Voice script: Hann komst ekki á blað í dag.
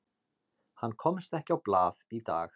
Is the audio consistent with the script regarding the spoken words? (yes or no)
yes